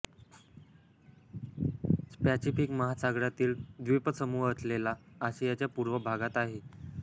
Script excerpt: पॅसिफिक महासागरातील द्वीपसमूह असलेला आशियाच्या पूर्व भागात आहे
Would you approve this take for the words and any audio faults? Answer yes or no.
yes